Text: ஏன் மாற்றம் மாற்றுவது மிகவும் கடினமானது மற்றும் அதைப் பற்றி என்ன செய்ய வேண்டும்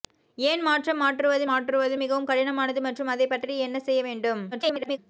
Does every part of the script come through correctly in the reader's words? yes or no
no